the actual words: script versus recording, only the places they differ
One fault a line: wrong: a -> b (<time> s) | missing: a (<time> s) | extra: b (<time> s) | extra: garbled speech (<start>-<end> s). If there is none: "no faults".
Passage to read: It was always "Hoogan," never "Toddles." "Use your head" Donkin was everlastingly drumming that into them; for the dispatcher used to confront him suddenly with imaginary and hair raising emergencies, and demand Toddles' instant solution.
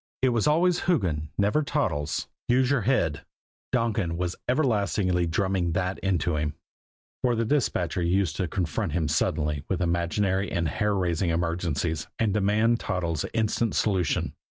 wrong: them -> him (6.4 s)